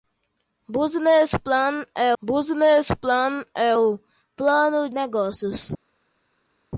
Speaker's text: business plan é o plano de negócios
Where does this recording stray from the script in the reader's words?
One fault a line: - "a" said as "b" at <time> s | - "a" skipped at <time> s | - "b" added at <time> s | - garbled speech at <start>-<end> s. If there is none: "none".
- "business plan é" added at 2.2 s
- "de" skipped at 4.9 s